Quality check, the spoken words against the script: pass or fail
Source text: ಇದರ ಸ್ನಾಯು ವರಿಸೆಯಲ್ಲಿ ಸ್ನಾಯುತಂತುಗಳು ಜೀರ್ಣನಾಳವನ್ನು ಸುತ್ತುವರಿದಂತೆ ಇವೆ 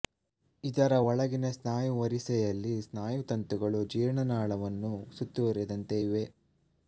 fail